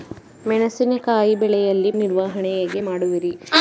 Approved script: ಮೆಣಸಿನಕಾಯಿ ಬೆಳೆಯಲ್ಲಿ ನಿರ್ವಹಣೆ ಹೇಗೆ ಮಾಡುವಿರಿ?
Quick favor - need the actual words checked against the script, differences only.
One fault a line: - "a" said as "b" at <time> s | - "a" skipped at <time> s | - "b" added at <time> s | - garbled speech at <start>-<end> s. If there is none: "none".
none